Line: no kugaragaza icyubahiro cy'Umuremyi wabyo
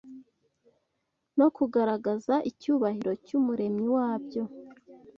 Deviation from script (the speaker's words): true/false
false